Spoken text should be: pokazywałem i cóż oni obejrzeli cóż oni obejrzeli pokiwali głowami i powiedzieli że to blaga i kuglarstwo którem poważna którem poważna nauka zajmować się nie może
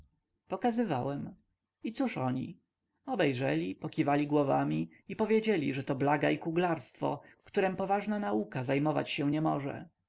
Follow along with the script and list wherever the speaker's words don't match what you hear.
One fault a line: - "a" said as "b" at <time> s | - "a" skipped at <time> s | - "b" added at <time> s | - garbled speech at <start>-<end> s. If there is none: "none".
- "cóż oni obejrzeli" skipped at 3.8 s
- "którem poważna" skipped at 8.2 s